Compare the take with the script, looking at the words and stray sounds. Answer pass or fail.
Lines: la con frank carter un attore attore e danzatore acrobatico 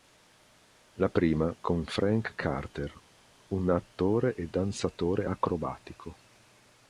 fail